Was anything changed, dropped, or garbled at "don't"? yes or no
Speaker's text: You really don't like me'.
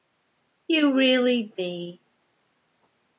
yes